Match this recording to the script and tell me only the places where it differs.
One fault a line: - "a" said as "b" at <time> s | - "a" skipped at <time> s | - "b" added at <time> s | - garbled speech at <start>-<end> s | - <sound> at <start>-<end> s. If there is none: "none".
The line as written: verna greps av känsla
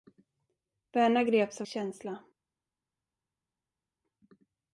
none